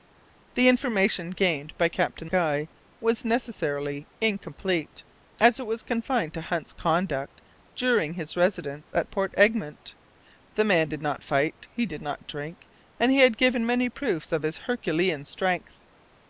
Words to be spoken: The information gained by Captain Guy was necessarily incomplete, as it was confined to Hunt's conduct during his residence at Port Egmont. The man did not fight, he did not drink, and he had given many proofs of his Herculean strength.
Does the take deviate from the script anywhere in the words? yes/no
no